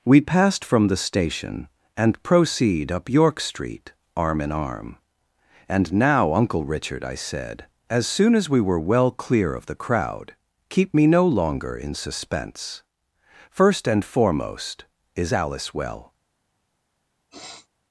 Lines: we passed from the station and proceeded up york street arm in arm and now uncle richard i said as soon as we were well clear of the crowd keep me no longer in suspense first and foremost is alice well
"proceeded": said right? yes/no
no